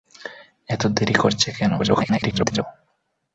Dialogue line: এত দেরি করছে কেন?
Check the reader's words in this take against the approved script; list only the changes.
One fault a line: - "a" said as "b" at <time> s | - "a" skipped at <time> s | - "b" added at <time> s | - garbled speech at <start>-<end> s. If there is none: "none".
- garbled speech at 1.8-2.6 s